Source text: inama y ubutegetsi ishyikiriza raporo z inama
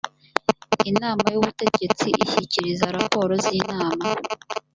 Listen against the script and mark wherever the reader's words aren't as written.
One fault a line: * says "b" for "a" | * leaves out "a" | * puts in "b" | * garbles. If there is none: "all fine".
all fine